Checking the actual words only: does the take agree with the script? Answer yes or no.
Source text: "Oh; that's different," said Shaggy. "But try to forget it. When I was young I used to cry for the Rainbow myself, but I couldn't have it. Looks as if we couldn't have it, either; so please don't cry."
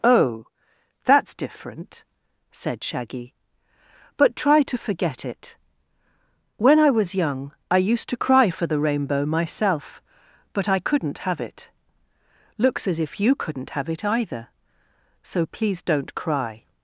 no